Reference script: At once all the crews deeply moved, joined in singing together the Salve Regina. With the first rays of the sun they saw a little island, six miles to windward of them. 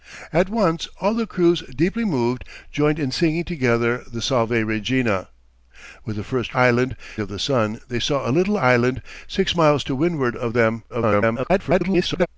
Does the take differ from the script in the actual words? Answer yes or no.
yes